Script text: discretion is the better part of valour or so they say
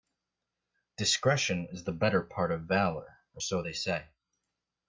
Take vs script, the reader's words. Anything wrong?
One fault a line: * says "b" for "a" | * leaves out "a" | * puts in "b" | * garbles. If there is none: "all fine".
all fine